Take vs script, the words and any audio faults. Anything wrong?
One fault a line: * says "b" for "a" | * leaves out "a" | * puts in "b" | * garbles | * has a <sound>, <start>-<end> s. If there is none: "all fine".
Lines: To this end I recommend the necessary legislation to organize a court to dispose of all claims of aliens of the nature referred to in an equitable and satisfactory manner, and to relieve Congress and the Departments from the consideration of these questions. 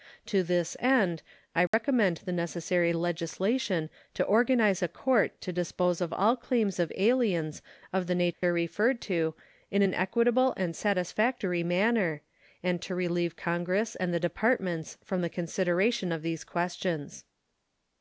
* has a dropout, 1.7-1.7 s
* has a dropout, 8.3-8.4 s